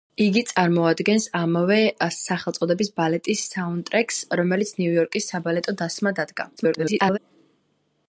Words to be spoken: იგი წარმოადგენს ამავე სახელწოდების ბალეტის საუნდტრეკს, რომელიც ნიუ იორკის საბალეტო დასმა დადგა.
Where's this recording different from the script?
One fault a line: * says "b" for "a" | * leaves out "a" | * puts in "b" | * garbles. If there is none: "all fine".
* garbles